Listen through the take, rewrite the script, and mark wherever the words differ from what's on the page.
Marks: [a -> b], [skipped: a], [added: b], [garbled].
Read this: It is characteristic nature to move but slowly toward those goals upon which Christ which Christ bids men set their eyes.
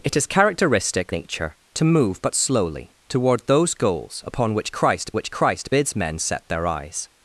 It is characteristic nature to move but slowly toward those goals upon which Christ which Christ bids men set their eyes.